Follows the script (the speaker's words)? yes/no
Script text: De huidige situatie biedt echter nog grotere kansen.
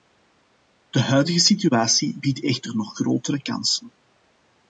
yes